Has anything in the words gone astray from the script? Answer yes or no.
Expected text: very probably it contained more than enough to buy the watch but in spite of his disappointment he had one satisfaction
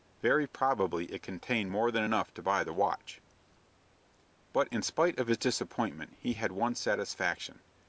no